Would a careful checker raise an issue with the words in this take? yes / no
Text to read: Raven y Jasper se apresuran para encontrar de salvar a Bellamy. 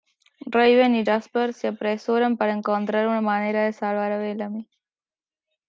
yes